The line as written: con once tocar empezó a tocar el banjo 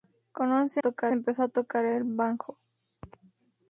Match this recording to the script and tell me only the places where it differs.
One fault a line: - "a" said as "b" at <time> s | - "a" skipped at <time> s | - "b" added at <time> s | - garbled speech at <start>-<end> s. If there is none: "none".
none